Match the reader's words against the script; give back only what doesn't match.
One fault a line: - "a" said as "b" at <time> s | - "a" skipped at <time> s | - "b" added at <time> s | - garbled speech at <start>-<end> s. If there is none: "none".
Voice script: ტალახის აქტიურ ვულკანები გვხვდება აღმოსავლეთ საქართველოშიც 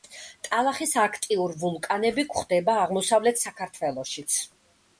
none